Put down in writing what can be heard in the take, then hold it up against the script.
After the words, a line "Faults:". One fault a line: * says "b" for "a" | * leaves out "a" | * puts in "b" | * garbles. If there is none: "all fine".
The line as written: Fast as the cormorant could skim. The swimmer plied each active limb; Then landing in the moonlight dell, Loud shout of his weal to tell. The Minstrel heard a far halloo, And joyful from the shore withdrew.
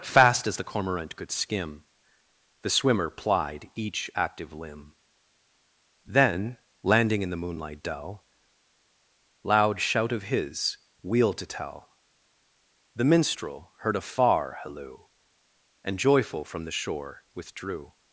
Fast as the cormorant could skim. The swimmer plied each active limb; Then landing in the moonlight dell, Loud shout of his weal to tell. The Minstrel heard a far halloo, And joyful from the shore withdrew.
Faults:
all fine